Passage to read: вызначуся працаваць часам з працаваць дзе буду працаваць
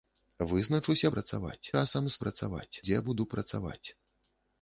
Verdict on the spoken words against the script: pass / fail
pass